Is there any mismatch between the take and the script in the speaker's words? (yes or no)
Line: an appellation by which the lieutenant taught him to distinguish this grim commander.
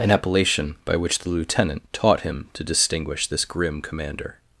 no